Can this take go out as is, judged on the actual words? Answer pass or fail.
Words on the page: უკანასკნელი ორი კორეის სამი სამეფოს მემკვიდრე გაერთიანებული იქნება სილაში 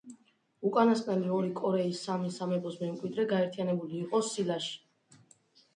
fail